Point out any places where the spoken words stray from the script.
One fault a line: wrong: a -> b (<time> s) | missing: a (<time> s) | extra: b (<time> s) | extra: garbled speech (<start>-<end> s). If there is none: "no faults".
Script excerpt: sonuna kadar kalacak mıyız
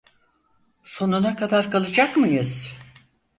no faults